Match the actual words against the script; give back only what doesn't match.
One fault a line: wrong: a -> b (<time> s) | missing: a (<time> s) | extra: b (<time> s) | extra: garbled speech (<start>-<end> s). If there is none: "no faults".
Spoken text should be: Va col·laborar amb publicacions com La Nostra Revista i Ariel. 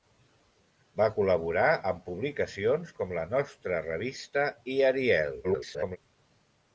extra: garbled speech (5.4-6.0 s)